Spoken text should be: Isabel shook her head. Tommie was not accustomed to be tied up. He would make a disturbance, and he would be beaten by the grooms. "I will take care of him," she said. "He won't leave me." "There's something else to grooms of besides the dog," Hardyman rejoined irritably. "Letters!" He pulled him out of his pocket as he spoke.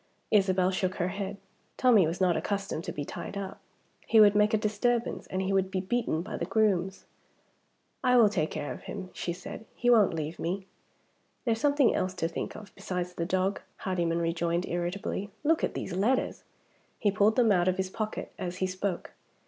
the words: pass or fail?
fail